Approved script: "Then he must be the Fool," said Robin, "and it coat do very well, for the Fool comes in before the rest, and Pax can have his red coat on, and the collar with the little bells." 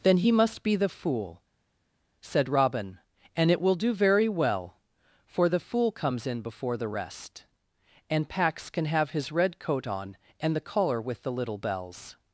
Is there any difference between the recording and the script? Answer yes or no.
yes